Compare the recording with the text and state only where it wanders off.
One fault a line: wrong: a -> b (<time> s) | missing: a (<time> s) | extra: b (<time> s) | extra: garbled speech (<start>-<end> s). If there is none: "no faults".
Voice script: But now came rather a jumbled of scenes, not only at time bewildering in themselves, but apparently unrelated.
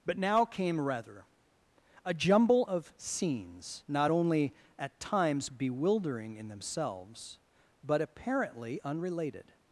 wrong: jumbled -> jumble (2.1 s)
wrong: time -> times (5.0 s)